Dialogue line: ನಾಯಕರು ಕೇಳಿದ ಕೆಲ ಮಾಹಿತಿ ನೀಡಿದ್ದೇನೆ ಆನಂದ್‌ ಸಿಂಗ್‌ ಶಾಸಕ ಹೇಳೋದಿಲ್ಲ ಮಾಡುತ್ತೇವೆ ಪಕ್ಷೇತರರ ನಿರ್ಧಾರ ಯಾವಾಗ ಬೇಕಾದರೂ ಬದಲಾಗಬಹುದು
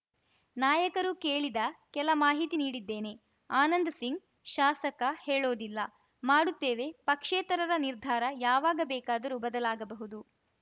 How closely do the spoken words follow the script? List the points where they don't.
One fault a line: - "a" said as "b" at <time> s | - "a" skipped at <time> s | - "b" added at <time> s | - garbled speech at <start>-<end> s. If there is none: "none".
none